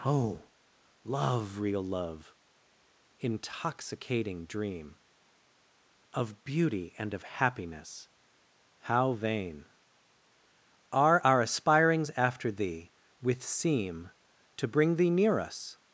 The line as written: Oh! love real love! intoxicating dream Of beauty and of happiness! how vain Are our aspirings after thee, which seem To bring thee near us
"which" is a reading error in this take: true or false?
true